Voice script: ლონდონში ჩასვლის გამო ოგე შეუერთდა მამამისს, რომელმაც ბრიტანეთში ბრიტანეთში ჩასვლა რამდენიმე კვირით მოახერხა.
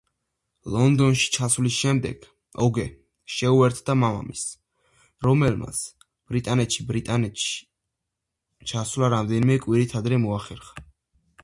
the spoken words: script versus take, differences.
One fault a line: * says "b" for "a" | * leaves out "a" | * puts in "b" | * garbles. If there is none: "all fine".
* says "შემდეგ" for "გამო"
* puts in "ადრე"